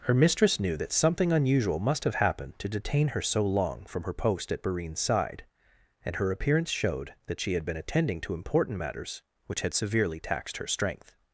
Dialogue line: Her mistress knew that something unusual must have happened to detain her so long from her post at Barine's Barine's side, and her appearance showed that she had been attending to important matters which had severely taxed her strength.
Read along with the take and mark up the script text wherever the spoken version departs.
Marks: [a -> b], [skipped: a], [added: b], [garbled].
Her mistress knew that something unusual must have happened to detain her so long from her post at Barine's [skipped: Barine's] side, and her appearance showed that she had been attending to important matters which had severely taxed her strength.